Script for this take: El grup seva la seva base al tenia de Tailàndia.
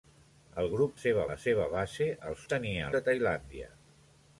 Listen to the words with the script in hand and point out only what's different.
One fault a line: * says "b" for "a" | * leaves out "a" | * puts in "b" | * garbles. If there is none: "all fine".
all fine